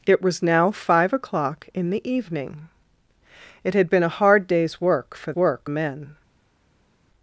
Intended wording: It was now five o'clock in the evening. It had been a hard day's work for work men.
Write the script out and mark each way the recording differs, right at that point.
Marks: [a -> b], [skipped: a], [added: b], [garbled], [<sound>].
It was now five o'clock in the evening. It had been a hard day's work for work men.